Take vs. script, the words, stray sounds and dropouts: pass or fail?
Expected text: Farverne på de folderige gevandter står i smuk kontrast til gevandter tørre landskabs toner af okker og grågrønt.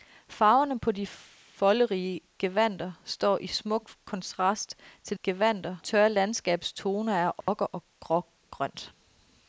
fail